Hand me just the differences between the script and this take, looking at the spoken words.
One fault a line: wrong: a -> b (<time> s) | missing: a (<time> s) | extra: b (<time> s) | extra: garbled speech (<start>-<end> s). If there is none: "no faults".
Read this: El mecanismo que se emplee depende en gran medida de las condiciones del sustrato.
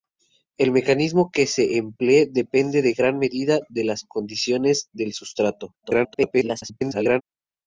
extra: garbled speech (5.8-7.2 s)